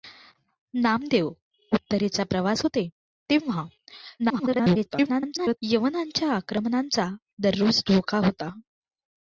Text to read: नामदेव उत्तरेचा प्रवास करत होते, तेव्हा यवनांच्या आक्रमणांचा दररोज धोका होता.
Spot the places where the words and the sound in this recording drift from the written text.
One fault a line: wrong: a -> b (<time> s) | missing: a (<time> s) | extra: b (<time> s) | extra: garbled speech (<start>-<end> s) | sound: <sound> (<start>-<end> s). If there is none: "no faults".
missing: करत (2.6 s)
extra: garbled speech (4.2-5.6 s)